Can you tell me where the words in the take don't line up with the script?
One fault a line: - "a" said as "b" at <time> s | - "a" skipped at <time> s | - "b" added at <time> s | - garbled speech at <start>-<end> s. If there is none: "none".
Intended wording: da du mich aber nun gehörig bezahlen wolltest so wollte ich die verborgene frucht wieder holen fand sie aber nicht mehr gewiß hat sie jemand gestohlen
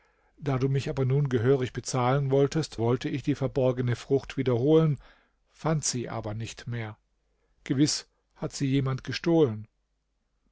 - "so" skipped at 2.8 s